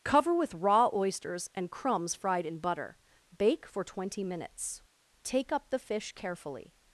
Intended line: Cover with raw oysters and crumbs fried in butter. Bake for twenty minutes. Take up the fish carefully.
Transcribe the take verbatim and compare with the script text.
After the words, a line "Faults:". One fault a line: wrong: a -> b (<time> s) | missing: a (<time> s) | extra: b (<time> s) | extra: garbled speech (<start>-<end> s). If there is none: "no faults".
Cover with raw oysters and crumbs fried in butter. Bake for twenty minutes. Take up the fish carefully.
Faults:
no faults